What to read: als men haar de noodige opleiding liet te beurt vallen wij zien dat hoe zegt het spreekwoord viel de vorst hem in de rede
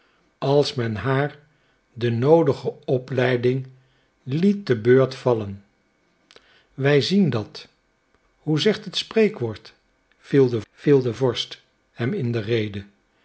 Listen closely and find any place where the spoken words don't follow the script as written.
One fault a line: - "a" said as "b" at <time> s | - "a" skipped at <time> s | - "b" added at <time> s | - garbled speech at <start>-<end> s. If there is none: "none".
- "viel de" added at 10.7 s